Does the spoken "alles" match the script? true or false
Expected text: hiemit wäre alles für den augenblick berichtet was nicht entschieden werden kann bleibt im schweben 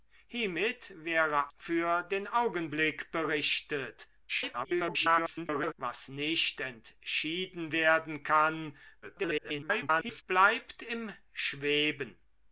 false